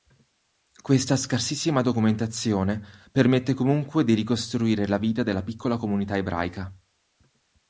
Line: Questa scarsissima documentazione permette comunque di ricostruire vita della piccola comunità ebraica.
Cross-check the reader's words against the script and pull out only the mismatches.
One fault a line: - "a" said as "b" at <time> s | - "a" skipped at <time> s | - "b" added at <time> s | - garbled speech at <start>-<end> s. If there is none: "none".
- "la" added at 4.9 s